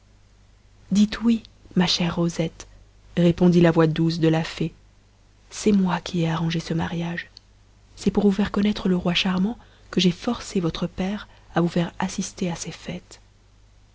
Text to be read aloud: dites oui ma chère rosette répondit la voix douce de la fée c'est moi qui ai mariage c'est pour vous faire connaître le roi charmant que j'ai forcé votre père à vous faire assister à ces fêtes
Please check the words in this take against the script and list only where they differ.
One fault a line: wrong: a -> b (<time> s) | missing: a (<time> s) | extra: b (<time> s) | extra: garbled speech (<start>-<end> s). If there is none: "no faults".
extra: arrangé ce (6.3 s)